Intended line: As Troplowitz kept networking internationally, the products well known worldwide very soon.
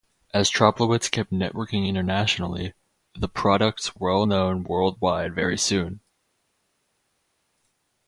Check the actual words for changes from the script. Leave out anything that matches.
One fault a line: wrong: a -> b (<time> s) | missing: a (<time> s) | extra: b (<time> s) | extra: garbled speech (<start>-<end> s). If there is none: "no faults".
no faults